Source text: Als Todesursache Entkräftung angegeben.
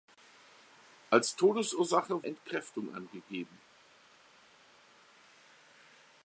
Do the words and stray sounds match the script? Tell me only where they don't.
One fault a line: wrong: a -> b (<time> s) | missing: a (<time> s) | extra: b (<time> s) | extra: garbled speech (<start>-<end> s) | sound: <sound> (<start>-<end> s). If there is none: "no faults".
no faults